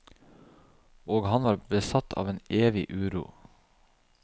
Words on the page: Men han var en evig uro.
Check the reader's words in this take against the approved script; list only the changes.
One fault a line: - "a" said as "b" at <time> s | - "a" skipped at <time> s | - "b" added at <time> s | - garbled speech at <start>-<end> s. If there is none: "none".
- "Men" said as "Og" at 1.1 s
- "besatt av" added at 1.7 s